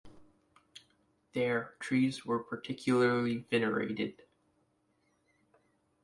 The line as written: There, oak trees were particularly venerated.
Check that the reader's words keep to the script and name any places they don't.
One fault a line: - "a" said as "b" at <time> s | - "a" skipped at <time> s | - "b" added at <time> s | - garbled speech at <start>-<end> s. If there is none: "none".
- "oak" skipped at 1.8 s